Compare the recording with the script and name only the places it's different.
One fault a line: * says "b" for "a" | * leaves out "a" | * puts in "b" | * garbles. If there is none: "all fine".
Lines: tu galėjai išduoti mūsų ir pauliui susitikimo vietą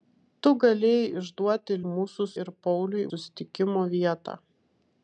all fine